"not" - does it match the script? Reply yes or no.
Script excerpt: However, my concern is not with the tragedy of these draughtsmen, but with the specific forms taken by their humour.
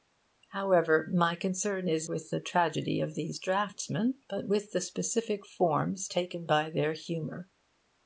no